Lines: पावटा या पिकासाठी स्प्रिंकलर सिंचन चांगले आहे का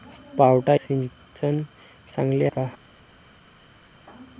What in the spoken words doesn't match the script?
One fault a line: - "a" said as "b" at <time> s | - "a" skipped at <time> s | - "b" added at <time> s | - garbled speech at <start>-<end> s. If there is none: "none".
- "या पिकासाठी स्प्रिंकलर" skipped at 0.8 s
- "आहे" skipped at 2.5 s